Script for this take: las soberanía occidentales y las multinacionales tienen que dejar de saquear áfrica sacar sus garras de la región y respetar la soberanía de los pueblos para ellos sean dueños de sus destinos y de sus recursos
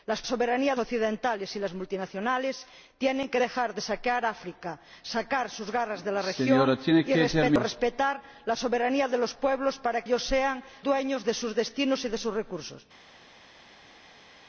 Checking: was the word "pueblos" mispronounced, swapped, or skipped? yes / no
no